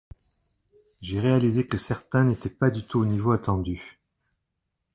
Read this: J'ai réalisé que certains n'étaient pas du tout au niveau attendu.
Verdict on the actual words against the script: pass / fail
pass